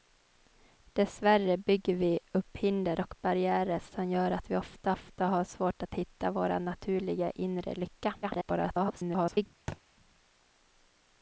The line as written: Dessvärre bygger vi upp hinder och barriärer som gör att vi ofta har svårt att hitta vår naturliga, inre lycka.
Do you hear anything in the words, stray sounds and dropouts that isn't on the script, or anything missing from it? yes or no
yes